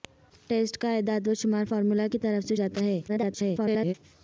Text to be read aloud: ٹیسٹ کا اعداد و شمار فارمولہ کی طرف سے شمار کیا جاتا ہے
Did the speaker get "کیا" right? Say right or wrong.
wrong